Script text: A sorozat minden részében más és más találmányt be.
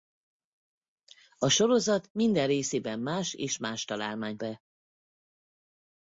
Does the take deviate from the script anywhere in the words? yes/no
no